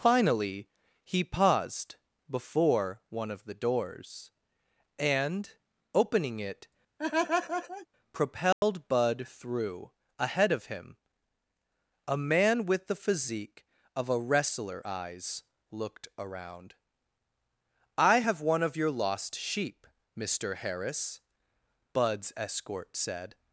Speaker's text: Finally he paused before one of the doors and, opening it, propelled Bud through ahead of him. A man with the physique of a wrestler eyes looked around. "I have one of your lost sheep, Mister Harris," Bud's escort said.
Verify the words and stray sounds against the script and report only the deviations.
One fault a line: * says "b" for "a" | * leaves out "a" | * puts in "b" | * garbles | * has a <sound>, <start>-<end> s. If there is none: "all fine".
* has a laugh, 7.0-7.9 s
* has a dropout, 8.5-8.6 s